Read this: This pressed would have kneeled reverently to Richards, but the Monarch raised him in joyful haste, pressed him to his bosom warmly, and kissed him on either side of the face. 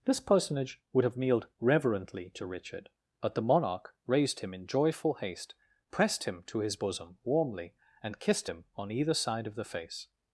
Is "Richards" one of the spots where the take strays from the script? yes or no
yes